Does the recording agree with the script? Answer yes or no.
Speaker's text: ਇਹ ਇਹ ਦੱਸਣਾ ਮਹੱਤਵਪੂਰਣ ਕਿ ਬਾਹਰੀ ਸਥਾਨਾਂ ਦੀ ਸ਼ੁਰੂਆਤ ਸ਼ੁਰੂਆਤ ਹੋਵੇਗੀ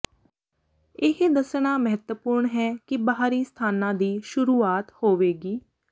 no